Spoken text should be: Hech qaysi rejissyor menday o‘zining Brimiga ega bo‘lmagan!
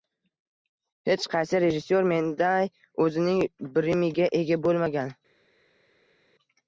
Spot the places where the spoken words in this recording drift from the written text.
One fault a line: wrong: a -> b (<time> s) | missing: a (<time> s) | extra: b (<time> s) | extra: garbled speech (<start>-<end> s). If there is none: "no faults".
no faults